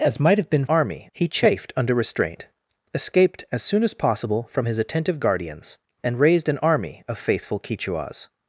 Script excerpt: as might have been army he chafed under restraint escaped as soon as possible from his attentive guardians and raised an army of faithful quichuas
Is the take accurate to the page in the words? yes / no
yes